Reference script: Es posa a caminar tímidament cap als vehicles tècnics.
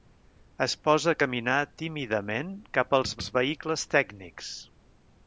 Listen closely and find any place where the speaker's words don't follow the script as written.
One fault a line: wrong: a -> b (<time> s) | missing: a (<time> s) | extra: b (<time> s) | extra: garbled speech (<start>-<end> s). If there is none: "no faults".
extra: als (3.2 s)